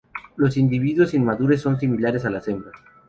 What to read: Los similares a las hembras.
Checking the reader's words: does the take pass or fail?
fail